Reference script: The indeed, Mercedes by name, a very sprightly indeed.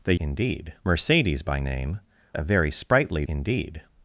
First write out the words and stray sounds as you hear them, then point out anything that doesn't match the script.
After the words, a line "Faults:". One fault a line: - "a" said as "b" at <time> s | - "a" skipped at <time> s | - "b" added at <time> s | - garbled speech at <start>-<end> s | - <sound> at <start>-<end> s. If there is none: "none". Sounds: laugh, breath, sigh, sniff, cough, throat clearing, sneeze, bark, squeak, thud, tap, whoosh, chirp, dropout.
The indeed, Mercedes by name, a very sprightly indeed.
Faults:
none